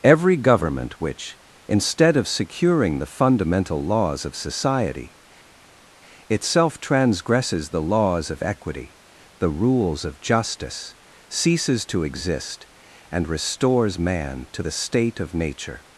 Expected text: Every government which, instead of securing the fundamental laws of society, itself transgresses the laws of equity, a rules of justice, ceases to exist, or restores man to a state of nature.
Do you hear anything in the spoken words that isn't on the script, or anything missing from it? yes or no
yes